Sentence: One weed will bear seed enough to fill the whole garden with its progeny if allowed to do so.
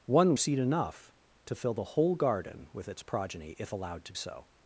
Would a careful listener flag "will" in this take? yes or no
yes